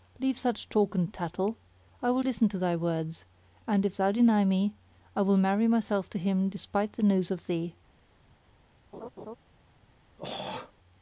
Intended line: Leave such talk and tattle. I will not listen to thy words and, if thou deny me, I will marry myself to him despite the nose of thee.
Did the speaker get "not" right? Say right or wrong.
wrong